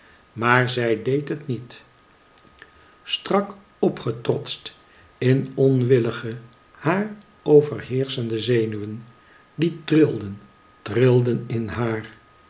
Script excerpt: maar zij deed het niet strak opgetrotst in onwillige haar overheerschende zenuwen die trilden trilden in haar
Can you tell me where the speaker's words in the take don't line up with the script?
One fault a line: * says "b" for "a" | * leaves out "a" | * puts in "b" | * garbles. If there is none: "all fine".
all fine